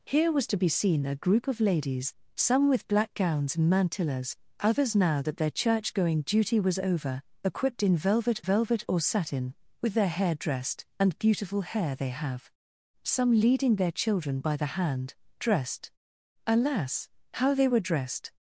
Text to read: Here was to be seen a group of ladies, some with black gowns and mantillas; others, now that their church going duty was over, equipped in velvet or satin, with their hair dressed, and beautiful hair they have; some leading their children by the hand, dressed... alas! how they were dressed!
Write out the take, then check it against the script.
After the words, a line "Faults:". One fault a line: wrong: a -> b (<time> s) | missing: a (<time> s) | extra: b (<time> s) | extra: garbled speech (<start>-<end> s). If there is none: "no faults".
Here was to be seen a group of ladies, some with black gowns and mantillas; others, now that their church going duty was over, equipped in velvet velvet or satin, with their hair dressed, and beautiful hair they have; some leading their children by the hand, dressed... alas! how they were dressed!
Faults:
extra: velvet (8.4 s)